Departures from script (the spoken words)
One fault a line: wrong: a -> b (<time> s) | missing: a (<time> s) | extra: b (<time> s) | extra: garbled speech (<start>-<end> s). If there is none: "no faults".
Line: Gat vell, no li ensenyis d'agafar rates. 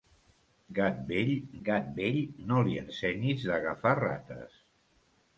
extra: gat vell (1.7 s)